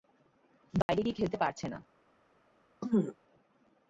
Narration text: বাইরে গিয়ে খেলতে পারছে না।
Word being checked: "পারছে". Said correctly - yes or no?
yes